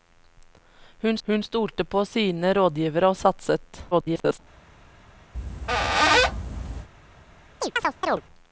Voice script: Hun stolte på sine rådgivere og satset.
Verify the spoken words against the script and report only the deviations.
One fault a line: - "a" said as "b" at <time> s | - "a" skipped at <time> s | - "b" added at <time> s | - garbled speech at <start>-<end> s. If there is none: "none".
- "hun" added at 1.3 s
- garbled speech at 3.9-4.4 s